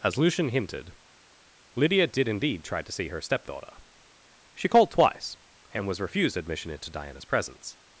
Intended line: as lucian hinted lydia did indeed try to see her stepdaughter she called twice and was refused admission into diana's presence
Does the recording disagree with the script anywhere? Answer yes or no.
no